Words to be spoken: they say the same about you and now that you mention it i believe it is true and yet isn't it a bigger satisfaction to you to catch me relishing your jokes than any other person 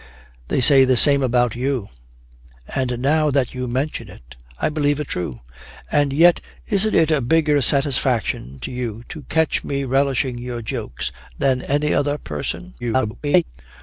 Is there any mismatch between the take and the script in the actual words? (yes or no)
yes